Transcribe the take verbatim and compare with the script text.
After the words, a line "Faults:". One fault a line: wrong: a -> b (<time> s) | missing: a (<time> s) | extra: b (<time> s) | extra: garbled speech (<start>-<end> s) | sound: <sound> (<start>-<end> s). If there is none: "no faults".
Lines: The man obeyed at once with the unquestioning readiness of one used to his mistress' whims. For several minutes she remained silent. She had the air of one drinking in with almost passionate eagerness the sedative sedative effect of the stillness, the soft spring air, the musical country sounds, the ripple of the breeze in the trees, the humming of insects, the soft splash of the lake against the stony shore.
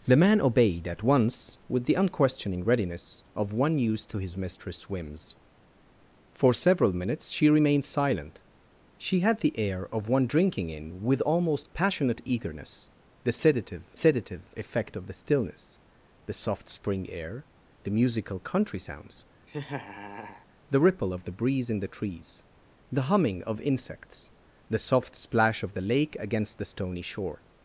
The man obeyed at once with the unquestioning readiness of one used to his mistress' whims. For several minutes she remained silent. She had the air of one drinking in with almost passionate eagerness the sedative sedative effect of the stillness, the soft spring air, the musical country sounds, the ripple of the breeze in the trees, the humming of insects, the soft splash of the lake against the stony shore.
Faults:
sound: laugh (19.5-20.5 s)